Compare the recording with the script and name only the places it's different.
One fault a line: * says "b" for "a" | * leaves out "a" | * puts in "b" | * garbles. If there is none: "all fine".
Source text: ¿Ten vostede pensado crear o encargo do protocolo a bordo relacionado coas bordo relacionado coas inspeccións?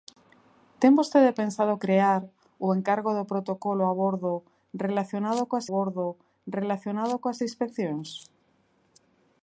all fine